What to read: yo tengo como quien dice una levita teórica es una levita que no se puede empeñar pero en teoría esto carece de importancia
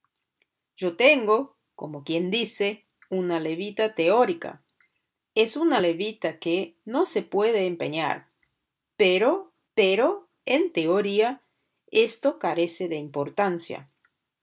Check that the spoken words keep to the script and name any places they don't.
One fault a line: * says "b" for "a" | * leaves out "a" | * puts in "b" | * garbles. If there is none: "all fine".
* puts in "pero"